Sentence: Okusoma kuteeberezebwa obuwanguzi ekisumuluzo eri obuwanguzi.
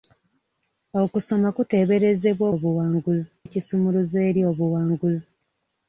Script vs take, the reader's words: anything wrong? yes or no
no